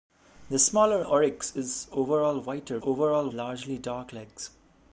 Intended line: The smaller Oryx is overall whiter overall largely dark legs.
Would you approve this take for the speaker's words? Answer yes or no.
yes